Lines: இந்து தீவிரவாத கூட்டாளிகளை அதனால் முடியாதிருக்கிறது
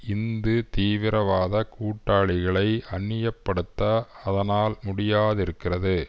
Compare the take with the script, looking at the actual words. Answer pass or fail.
fail